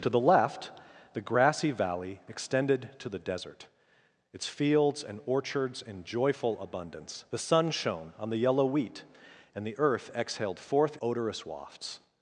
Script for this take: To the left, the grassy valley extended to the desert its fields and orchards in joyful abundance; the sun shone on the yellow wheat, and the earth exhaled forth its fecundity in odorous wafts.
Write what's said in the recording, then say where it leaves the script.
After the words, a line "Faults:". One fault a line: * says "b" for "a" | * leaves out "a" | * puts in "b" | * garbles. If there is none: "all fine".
To the left, the grassy valley extended to the desert its fields and orchards in joyful abundance; the sun shone on the yellow wheat, and the earth exhaled forth odorous wafts.
Faults:
* leaves out "its fecundity in"